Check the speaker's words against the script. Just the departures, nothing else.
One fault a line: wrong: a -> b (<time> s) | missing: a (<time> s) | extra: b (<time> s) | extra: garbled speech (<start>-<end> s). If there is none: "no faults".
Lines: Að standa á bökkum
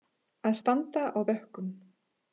no faults